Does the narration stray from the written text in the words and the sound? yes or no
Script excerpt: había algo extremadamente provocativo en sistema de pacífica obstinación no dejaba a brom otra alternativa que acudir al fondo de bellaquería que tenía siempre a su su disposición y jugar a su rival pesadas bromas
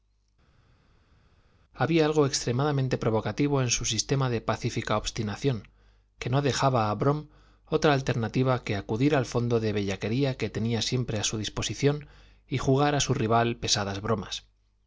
yes